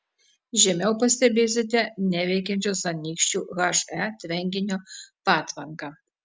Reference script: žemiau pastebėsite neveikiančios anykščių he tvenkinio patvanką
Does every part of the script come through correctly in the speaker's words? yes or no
yes